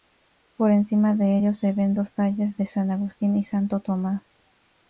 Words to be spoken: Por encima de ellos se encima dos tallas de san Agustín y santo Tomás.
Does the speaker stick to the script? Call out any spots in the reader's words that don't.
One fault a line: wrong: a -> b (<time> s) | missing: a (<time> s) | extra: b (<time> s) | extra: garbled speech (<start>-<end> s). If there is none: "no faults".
wrong: encima -> ven (1.7 s)